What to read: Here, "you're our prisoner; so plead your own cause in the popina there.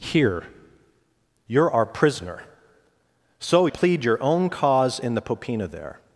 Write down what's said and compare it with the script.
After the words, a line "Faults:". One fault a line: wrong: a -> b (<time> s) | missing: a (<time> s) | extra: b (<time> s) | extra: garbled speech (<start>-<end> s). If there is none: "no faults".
Here, "you're our prisoner; so plead your own cause in the popina there.
Faults:
no faults